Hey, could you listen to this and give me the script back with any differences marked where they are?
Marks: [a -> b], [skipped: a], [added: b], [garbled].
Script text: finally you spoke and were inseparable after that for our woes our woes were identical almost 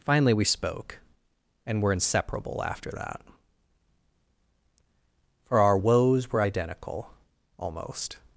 finally [you -> we] spoke and were inseparable after that for our woes [skipped: our woes] were identical almost